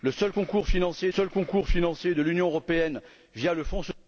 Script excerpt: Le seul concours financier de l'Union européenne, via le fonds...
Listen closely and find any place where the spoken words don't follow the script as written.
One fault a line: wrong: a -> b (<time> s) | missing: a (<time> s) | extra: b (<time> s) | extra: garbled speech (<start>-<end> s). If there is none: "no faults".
extra: seul concours financier (1.1 s)